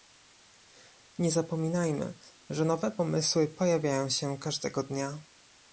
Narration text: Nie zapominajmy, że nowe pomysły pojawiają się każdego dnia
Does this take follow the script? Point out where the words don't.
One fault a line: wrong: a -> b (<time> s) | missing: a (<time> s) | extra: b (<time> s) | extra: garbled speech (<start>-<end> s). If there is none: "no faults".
no faults